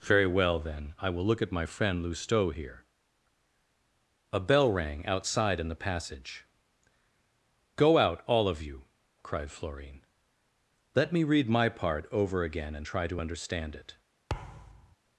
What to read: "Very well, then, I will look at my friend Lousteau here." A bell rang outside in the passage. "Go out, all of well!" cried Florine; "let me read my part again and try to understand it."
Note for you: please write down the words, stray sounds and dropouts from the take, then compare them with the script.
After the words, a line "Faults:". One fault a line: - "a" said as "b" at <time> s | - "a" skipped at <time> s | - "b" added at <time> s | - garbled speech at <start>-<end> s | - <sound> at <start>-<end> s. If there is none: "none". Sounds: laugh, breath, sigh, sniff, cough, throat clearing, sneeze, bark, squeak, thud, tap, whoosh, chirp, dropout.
"Very well, then, I will look at my friend Lousteau here." A bell rang outside in the passage. "Go out, all of you!" cried Florine; "let me read my part over again and try to understand it."
Faults:
- "well" said as "you" at 8.6 s
- "over" added at 12.1 s
- thud at 14.3-15.0 s